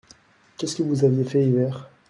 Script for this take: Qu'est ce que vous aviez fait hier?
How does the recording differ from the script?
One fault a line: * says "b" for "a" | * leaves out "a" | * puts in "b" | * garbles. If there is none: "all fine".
all fine